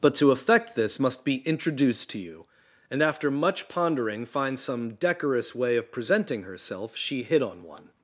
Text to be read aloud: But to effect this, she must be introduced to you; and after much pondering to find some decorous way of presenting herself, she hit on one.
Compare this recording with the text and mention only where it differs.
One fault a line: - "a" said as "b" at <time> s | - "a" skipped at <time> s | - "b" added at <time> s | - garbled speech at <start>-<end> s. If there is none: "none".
- "she" skipped at 1.0 s
- "to" skipped at 4.2 s